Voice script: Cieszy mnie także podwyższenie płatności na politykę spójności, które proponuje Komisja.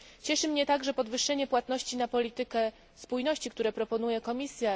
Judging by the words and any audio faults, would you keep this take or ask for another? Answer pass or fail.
pass